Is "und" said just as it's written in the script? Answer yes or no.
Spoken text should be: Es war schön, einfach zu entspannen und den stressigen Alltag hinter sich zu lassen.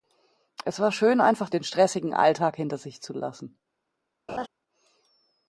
no